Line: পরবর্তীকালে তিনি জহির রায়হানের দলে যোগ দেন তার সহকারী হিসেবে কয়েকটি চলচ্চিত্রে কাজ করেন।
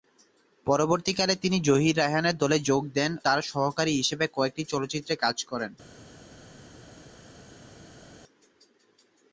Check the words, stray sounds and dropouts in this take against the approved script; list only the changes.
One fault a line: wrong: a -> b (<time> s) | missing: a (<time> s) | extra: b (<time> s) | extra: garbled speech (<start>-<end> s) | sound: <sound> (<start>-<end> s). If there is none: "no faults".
no faults